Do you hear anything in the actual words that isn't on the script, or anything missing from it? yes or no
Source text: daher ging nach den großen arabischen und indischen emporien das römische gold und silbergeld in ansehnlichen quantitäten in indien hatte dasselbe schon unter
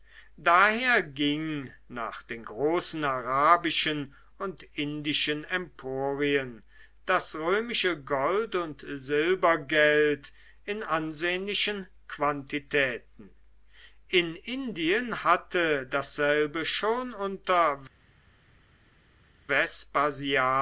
no